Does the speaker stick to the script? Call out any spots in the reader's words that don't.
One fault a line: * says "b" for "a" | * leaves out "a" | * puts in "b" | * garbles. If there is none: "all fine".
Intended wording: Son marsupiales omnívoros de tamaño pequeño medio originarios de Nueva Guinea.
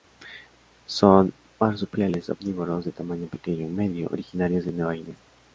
all fine